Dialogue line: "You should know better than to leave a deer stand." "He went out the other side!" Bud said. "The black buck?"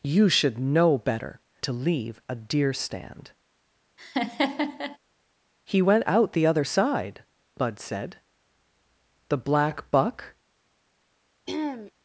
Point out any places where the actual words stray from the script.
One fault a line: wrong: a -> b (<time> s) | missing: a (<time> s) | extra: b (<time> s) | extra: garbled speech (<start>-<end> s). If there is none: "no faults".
missing: than (1.4 s)